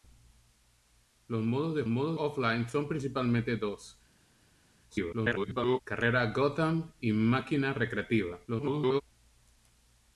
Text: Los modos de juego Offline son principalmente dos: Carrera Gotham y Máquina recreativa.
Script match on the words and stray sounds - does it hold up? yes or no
no